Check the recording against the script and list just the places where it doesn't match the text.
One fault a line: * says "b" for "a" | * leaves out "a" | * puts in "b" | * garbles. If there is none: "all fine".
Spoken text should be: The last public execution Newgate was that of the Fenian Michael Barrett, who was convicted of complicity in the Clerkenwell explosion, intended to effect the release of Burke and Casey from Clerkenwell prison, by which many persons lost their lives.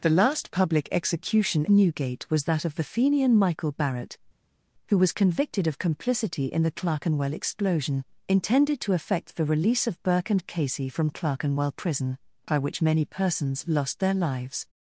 all fine